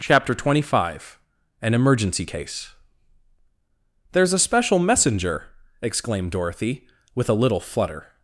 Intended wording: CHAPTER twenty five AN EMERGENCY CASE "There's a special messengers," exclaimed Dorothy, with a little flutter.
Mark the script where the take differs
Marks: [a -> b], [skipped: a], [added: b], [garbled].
CHAPTER twenty five AN EMERGENCY CASE "There's a special [messengers," -> messenger] exclaimed Dorothy, with a little flutter.